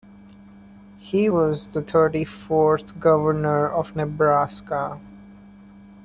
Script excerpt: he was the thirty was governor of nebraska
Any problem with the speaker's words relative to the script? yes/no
yes